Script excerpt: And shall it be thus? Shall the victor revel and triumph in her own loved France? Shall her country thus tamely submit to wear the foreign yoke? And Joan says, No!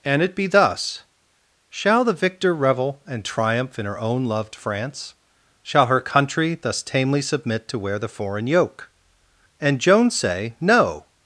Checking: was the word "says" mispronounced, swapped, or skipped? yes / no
yes